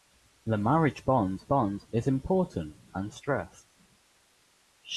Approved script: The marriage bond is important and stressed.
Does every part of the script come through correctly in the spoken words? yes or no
no